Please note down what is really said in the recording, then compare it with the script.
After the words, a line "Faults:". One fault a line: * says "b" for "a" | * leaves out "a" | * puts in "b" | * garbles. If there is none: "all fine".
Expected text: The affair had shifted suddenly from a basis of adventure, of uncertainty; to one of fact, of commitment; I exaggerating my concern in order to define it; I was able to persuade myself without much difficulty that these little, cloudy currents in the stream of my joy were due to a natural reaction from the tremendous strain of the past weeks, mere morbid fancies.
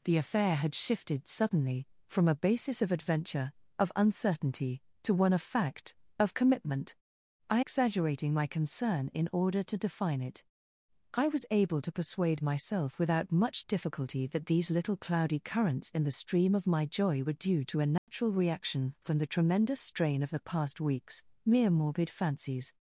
The affair had shifted suddenly from a basis of adventure, of uncertainty; to one of fact, of commitment; I exaggerating my concern in order to define it; I was able to persuade myself without much difficulty that these little, cloudy currents in the stream of my joy were due to a natural reaction from the tremendous strain of the past weeks, mere morbid fancies.
Faults:
all fine